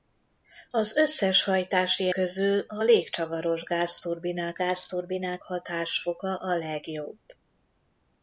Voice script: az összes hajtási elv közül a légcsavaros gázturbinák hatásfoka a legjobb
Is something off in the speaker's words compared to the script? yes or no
yes